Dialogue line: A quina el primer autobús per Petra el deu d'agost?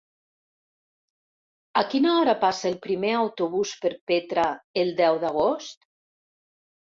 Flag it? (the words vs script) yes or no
yes